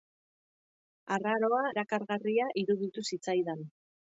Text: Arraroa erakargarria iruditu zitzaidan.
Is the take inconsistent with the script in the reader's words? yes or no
no